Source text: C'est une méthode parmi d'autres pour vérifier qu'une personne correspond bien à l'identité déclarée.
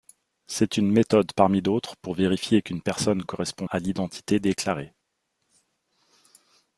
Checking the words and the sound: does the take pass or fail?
fail